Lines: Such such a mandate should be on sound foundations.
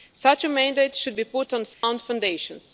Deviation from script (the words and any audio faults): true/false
true